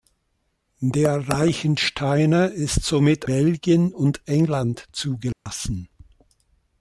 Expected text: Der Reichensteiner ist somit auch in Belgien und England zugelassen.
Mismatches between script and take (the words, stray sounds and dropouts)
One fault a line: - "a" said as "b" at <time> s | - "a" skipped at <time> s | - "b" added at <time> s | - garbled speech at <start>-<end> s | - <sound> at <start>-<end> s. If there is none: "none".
- "auch in" skipped at 3.3 s
- dropout at 5.3-5.5 s